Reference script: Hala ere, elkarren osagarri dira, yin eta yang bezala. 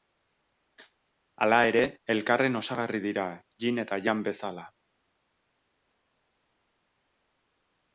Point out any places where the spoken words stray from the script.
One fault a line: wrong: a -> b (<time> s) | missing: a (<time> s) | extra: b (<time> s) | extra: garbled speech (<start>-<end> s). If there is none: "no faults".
no faults